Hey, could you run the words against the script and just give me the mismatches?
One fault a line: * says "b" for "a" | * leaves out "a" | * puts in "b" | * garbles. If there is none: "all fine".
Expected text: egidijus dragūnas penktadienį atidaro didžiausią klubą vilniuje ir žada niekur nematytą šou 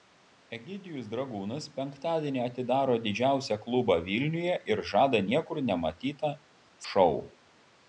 all fine